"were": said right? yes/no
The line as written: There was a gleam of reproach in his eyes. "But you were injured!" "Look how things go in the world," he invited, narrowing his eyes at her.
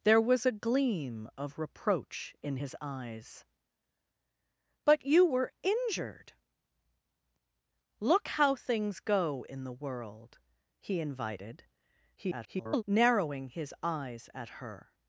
yes